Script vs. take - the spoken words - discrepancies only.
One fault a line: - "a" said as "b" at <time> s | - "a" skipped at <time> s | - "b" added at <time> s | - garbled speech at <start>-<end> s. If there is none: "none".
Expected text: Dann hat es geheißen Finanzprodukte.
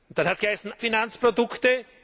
none